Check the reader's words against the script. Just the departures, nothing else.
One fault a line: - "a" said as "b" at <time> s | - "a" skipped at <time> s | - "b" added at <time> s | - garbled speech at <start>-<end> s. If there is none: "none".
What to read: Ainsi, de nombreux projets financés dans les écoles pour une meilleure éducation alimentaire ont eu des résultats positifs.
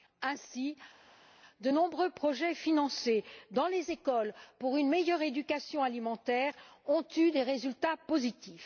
none